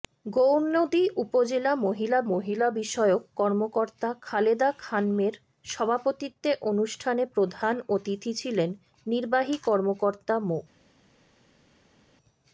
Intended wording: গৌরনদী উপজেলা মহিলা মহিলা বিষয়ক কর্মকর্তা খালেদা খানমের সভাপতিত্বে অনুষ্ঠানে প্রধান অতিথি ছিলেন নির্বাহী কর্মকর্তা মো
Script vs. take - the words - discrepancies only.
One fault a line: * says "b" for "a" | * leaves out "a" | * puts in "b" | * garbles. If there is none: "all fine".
all fine